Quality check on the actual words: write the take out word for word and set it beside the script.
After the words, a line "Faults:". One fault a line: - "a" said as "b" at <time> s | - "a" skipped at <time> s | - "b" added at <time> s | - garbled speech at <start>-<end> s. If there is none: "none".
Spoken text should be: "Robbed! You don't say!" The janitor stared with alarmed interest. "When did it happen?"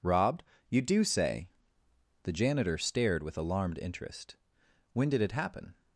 "Robbed! You do say!" The janitor stared with alarmed interest. "When did it happen?"
Faults:
- "don't" said as "do" at 0.8 s